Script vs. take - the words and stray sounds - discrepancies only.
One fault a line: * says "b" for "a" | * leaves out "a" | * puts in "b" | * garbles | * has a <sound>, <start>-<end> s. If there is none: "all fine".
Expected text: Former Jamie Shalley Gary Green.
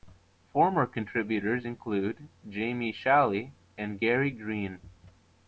* puts in "contributors include"
* puts in "and"